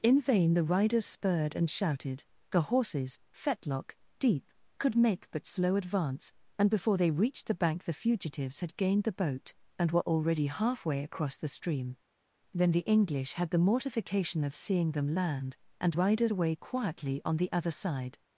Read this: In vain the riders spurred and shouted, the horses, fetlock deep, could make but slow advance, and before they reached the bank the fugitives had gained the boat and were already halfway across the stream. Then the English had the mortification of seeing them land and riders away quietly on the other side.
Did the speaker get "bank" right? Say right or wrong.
right